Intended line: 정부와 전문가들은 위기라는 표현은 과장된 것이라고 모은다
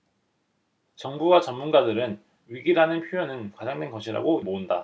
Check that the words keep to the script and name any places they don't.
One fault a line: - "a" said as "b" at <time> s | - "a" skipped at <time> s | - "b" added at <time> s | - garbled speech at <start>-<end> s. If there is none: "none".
none